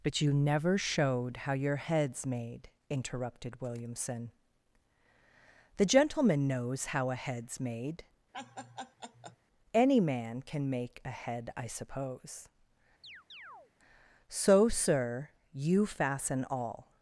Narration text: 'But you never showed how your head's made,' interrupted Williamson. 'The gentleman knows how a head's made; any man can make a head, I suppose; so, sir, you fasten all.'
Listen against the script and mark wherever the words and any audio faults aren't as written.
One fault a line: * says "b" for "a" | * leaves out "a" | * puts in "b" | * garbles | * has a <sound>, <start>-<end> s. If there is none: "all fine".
* has a laugh, 8.3-9.4 s
* has a chirp, 13.0-13.7 s